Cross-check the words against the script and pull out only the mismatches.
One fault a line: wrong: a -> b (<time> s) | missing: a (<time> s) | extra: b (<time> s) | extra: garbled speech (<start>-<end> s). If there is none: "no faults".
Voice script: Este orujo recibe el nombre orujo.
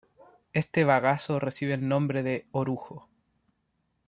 wrong: orujo -> bagazo (0.8 s)
extra: de (2.2 s)